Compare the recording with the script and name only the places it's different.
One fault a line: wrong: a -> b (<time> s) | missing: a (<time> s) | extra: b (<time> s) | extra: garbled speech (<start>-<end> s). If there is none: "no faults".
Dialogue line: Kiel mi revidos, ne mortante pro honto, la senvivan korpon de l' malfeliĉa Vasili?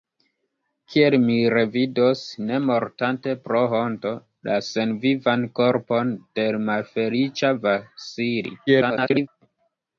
extra: garbled speech (8.7-9.3 s)